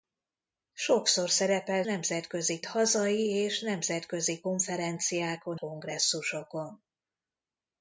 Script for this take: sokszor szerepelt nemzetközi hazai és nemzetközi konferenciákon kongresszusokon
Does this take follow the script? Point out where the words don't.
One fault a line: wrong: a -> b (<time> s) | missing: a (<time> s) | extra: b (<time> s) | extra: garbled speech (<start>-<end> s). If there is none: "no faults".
no faults